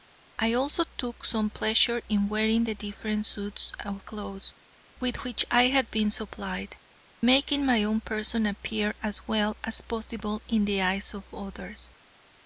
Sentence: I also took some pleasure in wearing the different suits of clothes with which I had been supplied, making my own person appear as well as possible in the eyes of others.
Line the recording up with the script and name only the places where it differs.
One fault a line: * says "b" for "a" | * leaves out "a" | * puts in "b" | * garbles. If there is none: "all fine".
all fine